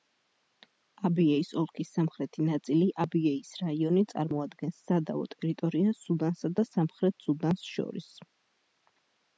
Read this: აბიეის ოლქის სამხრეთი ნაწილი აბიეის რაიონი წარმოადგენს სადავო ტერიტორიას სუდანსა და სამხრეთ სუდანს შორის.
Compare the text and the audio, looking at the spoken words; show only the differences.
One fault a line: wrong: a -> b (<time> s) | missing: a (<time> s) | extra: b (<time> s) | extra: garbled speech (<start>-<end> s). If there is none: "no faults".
no faults